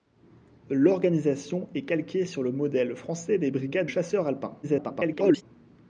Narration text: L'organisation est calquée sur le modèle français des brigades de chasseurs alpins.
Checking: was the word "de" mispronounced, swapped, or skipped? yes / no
yes